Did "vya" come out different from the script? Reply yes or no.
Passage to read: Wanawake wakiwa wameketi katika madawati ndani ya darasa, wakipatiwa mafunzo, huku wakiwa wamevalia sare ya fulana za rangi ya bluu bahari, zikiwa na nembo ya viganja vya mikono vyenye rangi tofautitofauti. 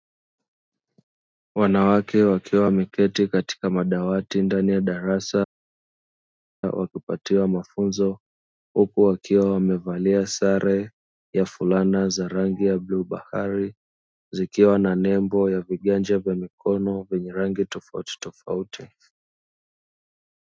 no